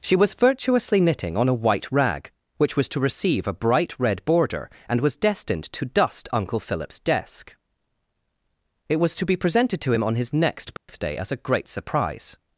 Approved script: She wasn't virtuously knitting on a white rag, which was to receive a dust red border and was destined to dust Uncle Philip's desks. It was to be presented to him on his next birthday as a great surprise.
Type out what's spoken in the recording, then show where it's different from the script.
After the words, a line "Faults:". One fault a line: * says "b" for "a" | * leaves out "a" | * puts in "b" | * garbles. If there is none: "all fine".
She was virtuously knitting on a white rag, which was to receive a bright red border and was destined to dust Uncle Philip's desk. It was to be presented to him on his next birthday as a great surprise.
Faults:
* says "was" for "wasn't"
* says "bright" for "dust"
* says "desk" for "desks"